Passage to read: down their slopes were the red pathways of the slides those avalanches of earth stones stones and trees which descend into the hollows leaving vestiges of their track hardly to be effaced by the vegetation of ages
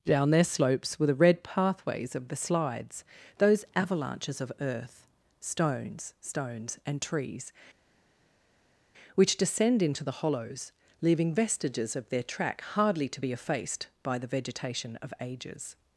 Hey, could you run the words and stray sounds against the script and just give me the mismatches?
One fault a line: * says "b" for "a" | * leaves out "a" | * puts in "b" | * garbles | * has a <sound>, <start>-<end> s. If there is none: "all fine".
all fine